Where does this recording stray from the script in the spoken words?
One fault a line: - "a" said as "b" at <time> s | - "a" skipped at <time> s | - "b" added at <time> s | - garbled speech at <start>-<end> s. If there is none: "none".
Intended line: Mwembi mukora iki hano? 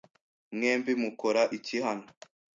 none